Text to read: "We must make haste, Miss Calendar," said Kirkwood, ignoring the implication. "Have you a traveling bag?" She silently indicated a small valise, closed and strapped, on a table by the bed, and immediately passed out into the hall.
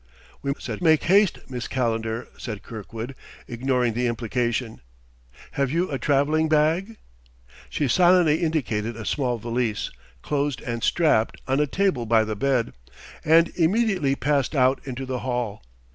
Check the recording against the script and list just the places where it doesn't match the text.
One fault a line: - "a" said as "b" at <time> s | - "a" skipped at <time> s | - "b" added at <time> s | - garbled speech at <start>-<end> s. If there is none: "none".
- "must" said as "said" at 0.6 s